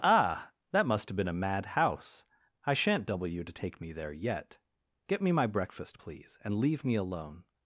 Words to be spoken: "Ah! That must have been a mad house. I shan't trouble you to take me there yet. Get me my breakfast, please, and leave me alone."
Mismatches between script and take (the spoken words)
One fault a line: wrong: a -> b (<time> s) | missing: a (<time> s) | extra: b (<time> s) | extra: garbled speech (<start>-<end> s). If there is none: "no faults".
wrong: trouble -> double (3.0 s)